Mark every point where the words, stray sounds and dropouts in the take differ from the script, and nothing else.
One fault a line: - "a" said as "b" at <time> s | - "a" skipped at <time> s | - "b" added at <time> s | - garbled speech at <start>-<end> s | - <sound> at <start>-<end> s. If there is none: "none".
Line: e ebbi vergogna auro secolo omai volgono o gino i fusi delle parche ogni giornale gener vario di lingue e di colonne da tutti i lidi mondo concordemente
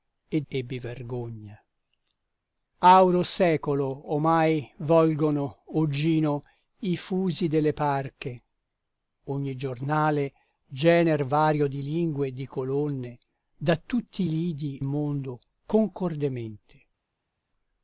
none